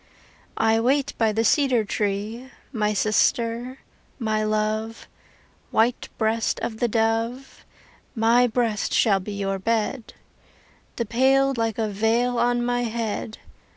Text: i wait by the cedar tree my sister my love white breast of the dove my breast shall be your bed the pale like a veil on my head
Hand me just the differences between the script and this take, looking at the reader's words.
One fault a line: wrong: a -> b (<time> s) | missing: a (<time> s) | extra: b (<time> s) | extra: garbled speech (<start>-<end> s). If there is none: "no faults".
no faults